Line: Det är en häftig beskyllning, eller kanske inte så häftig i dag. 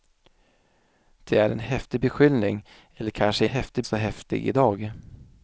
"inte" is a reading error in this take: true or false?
true